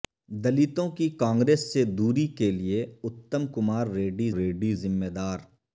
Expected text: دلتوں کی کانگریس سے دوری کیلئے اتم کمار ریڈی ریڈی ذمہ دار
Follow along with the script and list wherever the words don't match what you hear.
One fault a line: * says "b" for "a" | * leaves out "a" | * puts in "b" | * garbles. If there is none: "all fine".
all fine